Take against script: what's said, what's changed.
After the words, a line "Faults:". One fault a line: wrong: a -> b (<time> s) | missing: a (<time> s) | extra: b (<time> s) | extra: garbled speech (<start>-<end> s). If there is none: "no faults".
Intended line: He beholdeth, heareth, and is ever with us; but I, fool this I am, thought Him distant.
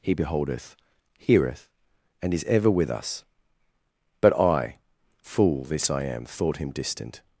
He beholdeth, heareth, and is ever with us; but I, fool this I am, thought Him distant.
Faults:
no faults